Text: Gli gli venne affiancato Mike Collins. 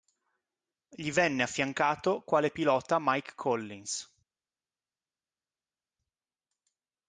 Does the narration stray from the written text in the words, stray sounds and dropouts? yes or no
yes